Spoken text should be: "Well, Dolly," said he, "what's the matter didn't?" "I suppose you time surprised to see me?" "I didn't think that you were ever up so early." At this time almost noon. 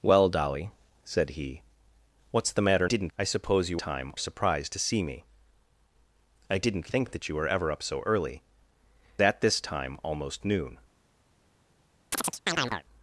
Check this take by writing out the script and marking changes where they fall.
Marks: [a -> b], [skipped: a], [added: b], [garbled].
"Well, Dolly," said he, "what's the matter didn't?" "I suppose you time surprised to see me?" "I didn't think that you were ever up so early." At this time almost noon.